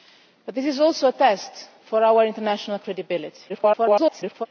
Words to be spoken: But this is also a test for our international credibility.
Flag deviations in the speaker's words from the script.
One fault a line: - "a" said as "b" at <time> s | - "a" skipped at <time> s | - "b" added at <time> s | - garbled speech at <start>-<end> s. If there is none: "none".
- garbled speech at 3.5-4.5 s